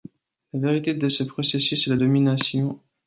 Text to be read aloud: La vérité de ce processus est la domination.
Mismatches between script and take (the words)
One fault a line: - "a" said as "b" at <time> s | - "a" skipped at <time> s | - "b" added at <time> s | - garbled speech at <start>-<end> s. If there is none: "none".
none